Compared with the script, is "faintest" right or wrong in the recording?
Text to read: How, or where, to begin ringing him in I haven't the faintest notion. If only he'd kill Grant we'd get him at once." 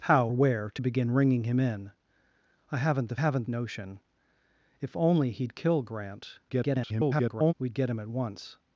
wrong